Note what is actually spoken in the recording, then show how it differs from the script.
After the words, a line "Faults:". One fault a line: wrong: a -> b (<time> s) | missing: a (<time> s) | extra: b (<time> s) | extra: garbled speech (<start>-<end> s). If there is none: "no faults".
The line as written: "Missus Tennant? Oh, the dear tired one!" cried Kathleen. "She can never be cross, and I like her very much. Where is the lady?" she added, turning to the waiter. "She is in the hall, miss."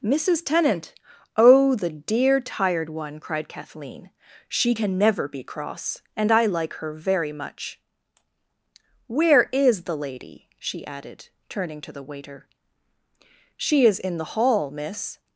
"Missus Tennant? Oh, the dear tired one!" cried Kathleen. "She can never be cross, and I like her very much. Where is the lady?" she added, turning to the waiter. "She is in the hall, miss."
Faults:
no faults